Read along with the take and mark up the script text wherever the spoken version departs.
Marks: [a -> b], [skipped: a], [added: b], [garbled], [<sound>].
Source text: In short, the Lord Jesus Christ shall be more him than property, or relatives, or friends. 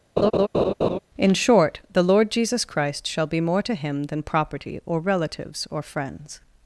[laugh] In short, the Lord Jesus Christ shall be more [added: to] him than property, or relatives, or friends.